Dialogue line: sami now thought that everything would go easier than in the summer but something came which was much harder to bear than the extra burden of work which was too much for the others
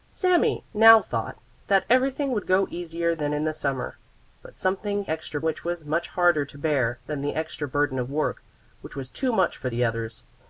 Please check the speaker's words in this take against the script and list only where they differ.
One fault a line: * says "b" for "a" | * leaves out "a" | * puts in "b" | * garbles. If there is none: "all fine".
* says "extra" for "came"